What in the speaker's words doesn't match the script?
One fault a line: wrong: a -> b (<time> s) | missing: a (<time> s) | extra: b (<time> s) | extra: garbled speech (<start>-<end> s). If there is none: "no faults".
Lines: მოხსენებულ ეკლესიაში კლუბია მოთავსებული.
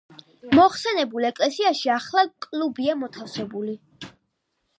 extra: ახლა (2.0 s)